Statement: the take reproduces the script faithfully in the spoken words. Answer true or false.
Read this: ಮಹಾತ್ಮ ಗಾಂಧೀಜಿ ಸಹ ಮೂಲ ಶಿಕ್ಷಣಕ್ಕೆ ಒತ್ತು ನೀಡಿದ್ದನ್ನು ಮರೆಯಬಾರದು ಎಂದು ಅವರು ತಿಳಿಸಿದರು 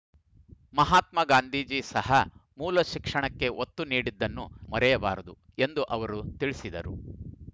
true